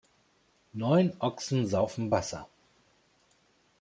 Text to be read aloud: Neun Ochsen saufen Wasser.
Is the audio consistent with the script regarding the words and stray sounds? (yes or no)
yes